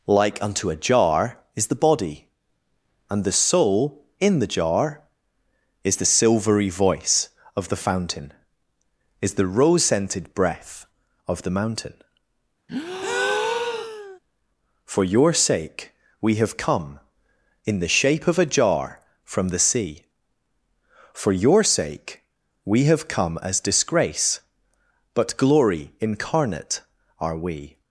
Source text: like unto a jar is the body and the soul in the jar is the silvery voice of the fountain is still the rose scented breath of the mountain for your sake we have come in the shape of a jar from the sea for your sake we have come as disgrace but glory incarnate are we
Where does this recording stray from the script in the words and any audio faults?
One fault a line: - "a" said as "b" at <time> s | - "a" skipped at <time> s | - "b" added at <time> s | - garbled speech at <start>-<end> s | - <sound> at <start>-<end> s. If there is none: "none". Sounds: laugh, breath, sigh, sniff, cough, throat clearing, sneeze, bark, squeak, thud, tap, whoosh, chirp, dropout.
- "still" skipped at 9.3 s
- breath at 12.7-14.2 s